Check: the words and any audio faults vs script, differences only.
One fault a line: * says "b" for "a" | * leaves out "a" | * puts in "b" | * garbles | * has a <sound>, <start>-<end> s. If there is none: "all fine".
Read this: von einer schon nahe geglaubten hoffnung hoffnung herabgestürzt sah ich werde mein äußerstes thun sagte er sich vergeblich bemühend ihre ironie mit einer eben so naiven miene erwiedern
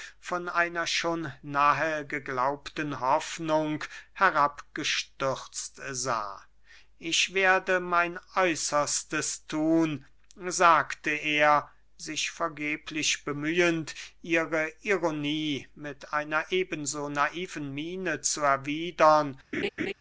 * leaves out "hoffnung"
* puts in "zu"
* has a laugh, 19.5-19.9 s